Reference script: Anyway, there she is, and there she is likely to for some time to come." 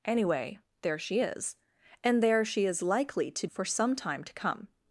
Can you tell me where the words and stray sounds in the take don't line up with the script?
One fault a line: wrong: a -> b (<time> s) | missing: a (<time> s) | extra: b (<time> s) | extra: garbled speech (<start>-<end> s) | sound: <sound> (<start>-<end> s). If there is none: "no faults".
no faults